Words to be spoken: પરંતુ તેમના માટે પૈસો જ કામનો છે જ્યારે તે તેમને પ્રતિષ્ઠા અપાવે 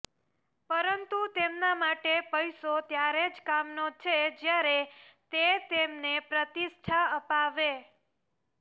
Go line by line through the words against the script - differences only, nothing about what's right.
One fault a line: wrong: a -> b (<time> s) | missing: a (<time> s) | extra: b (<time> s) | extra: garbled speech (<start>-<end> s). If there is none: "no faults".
extra: ત્યારે (2.9 s)